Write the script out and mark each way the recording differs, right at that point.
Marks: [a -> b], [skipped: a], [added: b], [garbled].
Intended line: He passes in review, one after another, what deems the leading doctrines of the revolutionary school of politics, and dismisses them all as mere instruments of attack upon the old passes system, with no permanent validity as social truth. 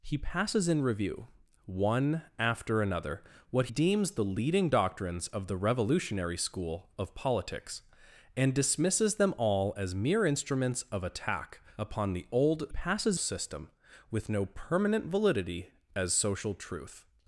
He passes in review, one after another, what deems the leading doctrines of the revolutionary school of politics, and dismisses them all as mere instruments of attack upon the old passes system, with no permanent validity as social truth.